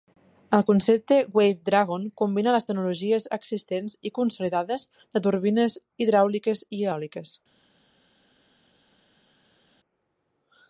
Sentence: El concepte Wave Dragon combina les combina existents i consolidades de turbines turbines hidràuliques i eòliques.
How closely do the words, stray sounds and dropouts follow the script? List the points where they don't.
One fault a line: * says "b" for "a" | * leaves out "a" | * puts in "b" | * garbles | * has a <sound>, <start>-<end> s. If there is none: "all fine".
* says "tecnologies" for "combina"
* leaves out "turbines"